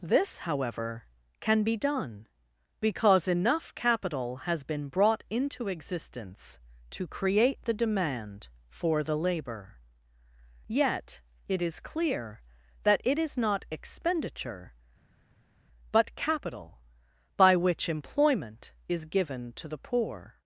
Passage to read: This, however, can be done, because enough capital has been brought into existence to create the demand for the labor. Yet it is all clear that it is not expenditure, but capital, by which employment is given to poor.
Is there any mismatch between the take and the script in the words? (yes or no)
yes